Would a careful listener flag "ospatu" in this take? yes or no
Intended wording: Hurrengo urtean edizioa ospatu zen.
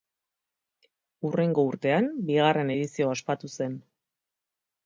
no